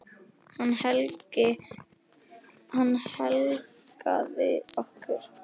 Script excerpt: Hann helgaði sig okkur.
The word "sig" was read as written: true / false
false